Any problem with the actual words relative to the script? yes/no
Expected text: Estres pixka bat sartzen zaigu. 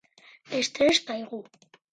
yes